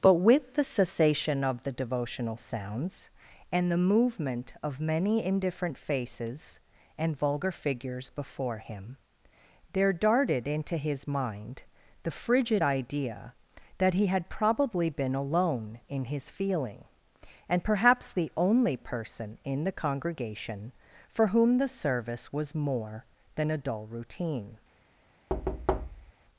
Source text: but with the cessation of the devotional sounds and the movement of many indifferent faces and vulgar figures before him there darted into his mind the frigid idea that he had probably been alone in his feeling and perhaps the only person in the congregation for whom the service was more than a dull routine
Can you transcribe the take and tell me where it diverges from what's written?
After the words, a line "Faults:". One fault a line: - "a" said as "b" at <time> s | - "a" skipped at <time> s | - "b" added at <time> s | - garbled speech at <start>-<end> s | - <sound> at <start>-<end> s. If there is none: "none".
but with the cessation of the devotional sounds and the movement of many indifferent faces and vulgar figures before him there darted into his mind the frigid idea that he had probably been alone in his feeling and perhaps the only person in the congregation for whom the service was more than a dull routine
Faults:
- thud at 25.3-26.1 s